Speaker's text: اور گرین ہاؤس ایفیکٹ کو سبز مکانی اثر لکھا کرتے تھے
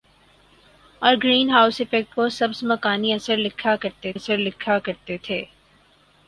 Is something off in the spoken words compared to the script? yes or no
yes